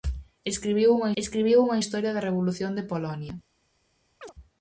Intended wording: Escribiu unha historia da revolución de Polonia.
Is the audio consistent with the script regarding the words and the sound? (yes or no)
no